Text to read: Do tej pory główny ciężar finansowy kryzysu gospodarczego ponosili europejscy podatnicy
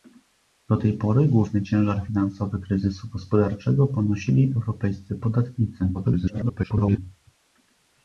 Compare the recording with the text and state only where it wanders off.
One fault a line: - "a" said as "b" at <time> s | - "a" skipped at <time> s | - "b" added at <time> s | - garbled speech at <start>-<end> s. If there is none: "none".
- garbled speech at 5.9-7.0 s